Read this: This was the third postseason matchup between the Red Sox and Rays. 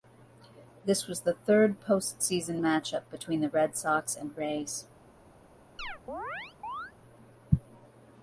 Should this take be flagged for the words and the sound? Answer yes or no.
yes